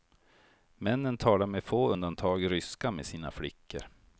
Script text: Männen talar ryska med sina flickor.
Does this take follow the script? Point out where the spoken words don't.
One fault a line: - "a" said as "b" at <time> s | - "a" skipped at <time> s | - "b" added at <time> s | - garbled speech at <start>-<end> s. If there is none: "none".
- "med få undantag" added at 1.4 s